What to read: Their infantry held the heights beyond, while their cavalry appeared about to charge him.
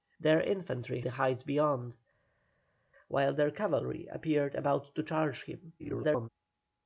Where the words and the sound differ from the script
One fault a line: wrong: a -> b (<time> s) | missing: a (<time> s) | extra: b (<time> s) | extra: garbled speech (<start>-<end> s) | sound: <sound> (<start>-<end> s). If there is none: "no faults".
missing: held (1.0 s)
extra: garbled speech (5.8-6.3 s)